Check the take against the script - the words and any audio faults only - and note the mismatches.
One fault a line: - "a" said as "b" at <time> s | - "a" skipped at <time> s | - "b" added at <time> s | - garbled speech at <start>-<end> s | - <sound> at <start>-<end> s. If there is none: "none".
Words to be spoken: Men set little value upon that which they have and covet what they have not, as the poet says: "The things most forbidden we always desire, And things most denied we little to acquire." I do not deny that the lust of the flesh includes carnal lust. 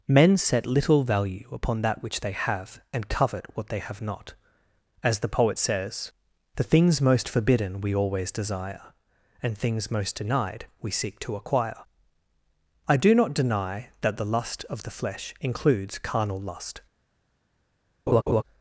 - "little" said as "seek" at 10.9 s
- laugh at 18.1-18.4 s